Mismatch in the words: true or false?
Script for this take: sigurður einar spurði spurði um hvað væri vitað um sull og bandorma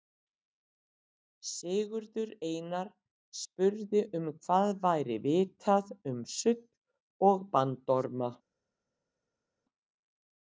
true